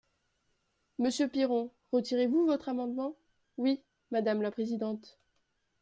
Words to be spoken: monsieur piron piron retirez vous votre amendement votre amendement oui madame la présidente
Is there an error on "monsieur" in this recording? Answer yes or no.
no